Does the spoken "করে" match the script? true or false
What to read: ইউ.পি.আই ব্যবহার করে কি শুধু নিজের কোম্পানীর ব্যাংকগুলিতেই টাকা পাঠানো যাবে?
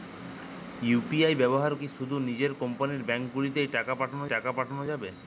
false